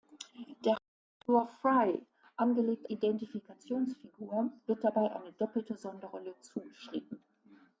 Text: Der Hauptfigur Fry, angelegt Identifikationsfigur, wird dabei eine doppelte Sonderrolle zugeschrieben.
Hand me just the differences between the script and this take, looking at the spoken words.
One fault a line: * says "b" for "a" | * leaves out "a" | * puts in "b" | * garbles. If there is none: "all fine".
all fine